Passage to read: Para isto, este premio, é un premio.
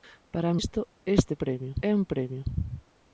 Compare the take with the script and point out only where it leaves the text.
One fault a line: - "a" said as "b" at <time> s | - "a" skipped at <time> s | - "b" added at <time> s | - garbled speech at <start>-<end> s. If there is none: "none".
none